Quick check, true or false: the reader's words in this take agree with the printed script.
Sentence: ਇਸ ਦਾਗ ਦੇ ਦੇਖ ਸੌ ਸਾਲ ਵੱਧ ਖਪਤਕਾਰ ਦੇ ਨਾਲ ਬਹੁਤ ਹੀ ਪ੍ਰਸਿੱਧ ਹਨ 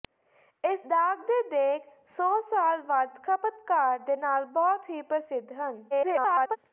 false